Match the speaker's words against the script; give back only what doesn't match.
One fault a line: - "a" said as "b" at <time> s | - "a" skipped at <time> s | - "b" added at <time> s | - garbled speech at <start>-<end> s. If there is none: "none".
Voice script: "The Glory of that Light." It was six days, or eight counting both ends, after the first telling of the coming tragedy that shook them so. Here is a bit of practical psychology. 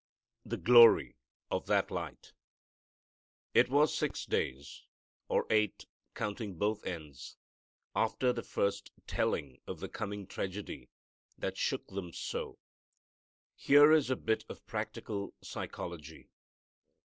none